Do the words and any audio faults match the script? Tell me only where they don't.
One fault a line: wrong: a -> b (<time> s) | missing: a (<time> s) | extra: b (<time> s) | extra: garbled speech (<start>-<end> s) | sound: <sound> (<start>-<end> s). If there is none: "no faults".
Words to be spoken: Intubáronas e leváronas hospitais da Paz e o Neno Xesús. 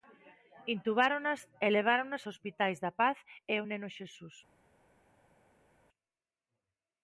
no faults